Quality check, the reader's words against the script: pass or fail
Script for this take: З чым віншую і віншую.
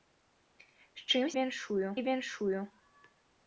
pass